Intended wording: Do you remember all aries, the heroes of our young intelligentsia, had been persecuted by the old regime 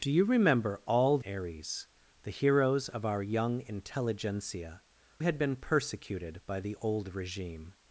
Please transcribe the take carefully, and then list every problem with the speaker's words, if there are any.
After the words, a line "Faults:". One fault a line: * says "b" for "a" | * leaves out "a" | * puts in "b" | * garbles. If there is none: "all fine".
Do you remember all aries, the heroes of our young intelligentsia, had been persecuted by the old regime
Faults:
all fine